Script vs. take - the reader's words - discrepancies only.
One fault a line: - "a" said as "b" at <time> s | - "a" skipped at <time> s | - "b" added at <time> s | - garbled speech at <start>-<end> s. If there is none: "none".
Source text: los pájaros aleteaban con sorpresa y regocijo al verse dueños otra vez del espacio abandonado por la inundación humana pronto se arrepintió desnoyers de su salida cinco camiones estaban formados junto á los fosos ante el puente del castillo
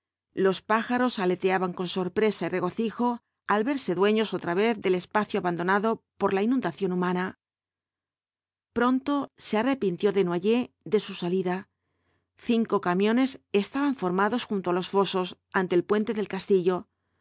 none